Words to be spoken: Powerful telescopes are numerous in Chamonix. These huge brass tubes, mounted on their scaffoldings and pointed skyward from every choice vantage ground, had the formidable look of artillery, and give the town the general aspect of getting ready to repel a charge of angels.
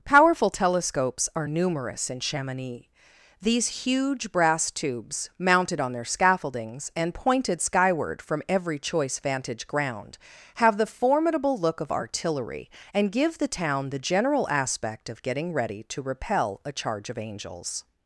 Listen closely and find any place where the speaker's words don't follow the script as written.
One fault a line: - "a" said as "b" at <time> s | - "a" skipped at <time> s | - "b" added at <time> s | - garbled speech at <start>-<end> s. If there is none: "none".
- "had" said as "have" at 10.5 s